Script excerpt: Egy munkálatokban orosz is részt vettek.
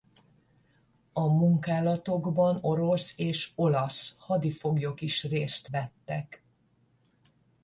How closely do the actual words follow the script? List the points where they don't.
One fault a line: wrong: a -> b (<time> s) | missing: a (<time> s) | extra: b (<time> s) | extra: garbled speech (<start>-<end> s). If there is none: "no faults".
wrong: Egy -> A (1.1 s)
extra: és olasz hadifoglyok (3.2 s)